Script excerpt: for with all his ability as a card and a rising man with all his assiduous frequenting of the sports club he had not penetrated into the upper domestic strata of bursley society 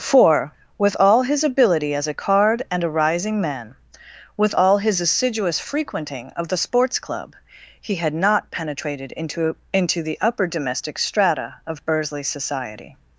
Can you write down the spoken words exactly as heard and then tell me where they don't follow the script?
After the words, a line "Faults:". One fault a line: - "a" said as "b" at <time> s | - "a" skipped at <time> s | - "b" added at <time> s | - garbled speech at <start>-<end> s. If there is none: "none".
for with all his ability as a card and a rising man with all his assiduous frequenting of the sports club he had not penetrated into into the upper domestic strata of bursley society
Faults:
- "into" added at 9.7 s